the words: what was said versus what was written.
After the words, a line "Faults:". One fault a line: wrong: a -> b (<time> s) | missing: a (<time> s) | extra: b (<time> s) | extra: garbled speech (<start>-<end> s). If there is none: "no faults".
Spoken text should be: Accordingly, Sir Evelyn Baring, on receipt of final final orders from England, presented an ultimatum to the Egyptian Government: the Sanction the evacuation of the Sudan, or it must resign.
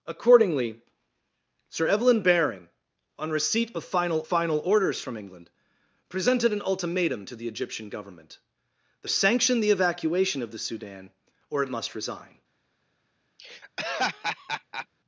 Accordingly, Sir Evelyn Baring, on receipt of final final orders from England, presented an ultimatum to the Egyptian Government: the Sanction the evacuation of the Sudan, or it must resign.
Faults:
no faults